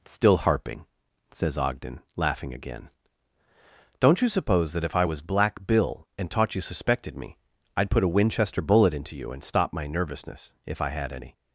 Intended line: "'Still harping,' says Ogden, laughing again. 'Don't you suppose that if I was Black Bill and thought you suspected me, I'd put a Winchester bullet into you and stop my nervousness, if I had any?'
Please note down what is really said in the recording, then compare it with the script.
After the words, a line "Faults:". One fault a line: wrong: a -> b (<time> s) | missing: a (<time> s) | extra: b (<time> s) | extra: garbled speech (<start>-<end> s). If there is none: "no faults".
"'Still harping,' says Ogden, laughing again. 'Don't you suppose that if I was Black Bill and taught you suspected me, I'd put a Winchester bullet into you and stop my nervousness, if I had any?'
Faults:
wrong: thought -> taught (6.3 s)